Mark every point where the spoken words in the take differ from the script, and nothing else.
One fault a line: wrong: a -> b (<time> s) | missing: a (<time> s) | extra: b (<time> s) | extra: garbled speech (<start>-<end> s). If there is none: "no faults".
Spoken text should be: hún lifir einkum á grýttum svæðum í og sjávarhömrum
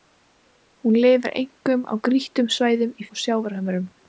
no faults